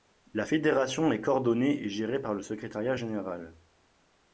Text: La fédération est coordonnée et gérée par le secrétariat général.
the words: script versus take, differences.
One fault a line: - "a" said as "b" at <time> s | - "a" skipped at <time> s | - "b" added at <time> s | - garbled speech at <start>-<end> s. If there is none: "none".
none